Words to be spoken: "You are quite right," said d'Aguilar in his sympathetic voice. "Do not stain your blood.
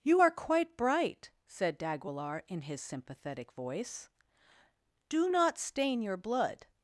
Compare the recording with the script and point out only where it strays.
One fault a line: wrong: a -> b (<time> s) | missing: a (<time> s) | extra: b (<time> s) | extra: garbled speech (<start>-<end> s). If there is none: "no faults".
wrong: right -> bright (0.8 s)